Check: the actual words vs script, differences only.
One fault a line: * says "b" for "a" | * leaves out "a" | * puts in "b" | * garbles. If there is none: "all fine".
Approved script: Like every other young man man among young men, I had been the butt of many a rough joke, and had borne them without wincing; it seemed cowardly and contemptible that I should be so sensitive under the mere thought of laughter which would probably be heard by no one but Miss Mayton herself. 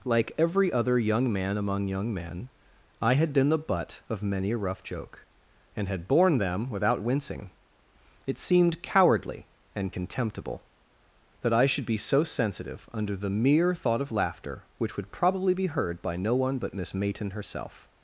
* leaves out "man"